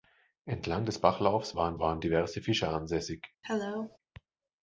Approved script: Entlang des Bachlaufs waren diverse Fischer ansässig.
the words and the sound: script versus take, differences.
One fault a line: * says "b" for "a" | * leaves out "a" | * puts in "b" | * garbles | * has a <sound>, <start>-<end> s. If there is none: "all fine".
* puts in "waren"
* has a cough, 3.4-4.0 s